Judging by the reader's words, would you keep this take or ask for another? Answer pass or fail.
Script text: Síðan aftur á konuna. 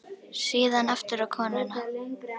pass